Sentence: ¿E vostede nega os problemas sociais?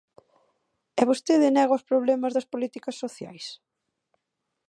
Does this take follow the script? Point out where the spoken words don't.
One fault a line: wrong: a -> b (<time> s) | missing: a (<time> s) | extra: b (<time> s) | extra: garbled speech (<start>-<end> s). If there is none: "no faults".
extra: das políticas (2.3 s)